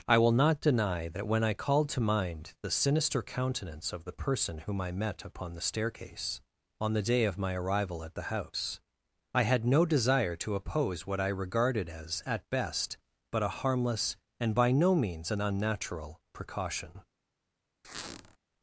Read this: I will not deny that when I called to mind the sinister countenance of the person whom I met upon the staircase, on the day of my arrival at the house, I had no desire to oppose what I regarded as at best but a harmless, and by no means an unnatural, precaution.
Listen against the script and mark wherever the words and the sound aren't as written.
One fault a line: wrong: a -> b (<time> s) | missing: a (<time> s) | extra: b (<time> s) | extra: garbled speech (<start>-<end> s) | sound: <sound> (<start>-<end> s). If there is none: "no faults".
sound: squeak (17.8-18.4 s)